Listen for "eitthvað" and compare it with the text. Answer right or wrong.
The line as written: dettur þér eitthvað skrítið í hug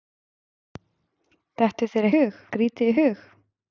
wrong